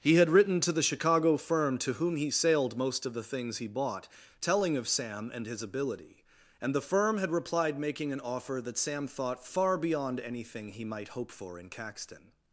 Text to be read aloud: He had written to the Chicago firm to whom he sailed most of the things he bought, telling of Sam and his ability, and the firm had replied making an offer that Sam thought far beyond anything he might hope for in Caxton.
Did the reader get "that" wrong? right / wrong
right